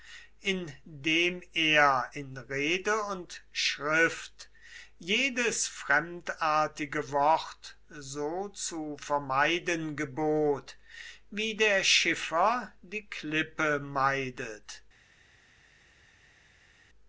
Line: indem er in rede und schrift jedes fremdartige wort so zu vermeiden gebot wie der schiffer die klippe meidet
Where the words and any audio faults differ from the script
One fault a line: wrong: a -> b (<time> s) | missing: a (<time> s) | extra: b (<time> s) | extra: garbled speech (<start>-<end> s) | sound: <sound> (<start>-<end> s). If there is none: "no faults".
no faults